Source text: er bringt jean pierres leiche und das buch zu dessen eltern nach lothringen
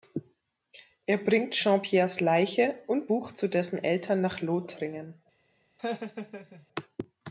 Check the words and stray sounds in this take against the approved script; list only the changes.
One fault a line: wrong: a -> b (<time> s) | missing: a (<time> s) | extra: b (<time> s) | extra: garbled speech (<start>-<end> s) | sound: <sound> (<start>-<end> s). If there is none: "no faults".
missing: das (3.1 s)
sound: laugh (5.8-6.7 s)